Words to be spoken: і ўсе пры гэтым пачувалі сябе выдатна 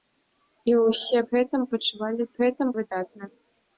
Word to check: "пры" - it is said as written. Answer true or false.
false